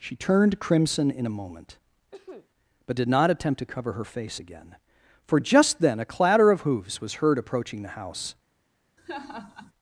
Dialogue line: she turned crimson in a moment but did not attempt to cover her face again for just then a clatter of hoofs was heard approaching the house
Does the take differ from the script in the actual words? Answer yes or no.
no